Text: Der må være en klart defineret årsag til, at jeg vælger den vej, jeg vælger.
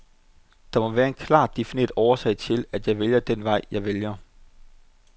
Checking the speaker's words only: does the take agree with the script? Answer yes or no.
yes